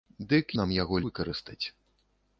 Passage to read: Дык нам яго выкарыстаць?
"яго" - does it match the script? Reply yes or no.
yes